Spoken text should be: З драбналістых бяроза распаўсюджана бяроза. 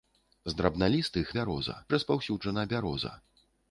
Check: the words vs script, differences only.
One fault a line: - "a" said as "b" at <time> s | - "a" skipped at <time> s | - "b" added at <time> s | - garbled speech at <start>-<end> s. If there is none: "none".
none